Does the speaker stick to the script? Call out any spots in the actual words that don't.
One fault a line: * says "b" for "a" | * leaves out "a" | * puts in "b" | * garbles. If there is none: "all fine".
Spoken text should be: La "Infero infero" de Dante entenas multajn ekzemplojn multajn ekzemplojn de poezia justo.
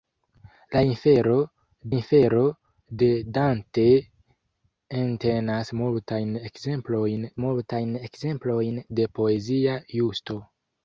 all fine